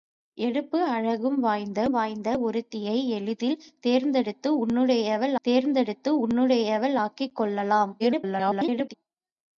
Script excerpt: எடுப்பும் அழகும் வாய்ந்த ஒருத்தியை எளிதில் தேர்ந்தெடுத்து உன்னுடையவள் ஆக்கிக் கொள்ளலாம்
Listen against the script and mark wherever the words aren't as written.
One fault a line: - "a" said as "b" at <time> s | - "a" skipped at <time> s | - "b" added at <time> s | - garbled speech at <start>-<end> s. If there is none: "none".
- "வாய்ந்த" added at 1.9 s
- "தேர்ந்தெடுத்து உன்னுடையவள்" added at 5.4 s
- garbled speech at 8.0-8.9 s